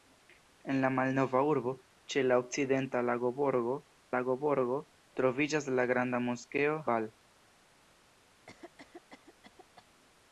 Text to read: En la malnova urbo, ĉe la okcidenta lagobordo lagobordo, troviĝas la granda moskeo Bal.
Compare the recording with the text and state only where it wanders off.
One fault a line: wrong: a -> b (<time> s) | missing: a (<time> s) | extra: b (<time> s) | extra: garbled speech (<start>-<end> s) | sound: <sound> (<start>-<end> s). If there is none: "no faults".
sound: cough (8.5-9.9 s)